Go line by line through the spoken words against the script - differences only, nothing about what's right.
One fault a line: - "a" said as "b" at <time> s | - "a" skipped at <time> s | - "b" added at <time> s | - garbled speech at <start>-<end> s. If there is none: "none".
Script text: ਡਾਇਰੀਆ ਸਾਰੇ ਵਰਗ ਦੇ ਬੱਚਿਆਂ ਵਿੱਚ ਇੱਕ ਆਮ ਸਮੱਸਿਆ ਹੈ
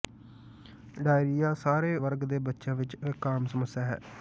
none